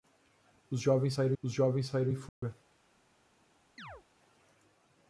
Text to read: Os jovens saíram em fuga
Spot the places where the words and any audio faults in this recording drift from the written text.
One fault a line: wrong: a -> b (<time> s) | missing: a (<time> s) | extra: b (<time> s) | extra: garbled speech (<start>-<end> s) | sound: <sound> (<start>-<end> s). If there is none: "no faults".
extra: os jovens saíram (1.4 s)
sound: dropout (2.3-2.4 s)
sound: chirp (3.8-4.0 s)